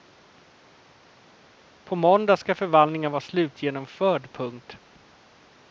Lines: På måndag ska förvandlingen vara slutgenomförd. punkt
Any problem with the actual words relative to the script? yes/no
no